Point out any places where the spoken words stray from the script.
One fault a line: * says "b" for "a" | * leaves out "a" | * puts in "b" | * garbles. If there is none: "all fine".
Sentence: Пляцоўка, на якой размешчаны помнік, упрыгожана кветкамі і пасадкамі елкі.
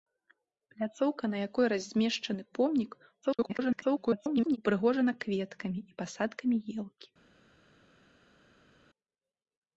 * garbles